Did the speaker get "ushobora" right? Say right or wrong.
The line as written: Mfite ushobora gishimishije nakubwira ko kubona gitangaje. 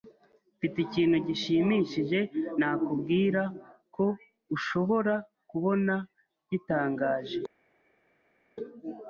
wrong